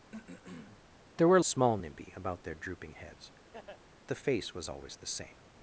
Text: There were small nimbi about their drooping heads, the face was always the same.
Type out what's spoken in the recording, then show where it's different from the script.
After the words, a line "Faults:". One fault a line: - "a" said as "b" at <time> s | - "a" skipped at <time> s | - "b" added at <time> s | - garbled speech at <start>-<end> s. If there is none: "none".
There were small nimbi about their drooping heads, the face was always the same.
Faults:
none